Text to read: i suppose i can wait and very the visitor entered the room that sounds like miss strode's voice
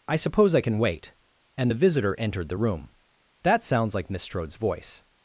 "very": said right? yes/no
no